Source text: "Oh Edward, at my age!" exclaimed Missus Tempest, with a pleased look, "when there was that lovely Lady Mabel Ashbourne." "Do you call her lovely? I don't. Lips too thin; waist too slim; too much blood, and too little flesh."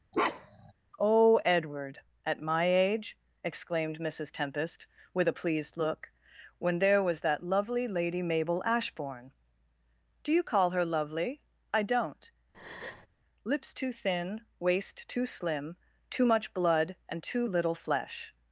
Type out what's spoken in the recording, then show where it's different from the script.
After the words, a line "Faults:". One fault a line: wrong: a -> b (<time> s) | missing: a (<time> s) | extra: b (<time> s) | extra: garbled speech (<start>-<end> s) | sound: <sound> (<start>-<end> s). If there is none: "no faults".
"Oh Edward, at my age!" exclaimed Missus Tempest, with a pleased look, "when there was that lovely Lady Mabel Ashbourne." "Do you call her lovely? I don't. Lips too thin; waist too slim; too much blood, and too little flesh."
Faults:
sound: bark (0.1-0.7 s)
sound: breath (12.5-13.1 s)